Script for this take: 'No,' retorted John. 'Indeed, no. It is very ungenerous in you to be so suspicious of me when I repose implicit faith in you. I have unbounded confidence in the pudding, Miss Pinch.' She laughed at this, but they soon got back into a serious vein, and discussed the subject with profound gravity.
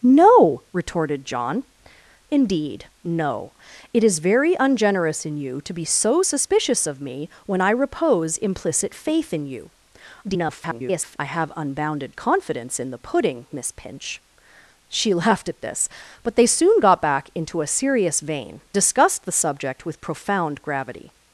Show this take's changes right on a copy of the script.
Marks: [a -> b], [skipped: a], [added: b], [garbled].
'No,' retorted John. 'Indeed, no. It is very ungenerous in you to be so suspicious of me when I repose implicit faith in you. [garbled] I have unbounded confidence in the pudding, Miss Pinch.' She laughed at this, but they soon got back into a serious vein, [skipped: and] discussed the subject with profound gravity.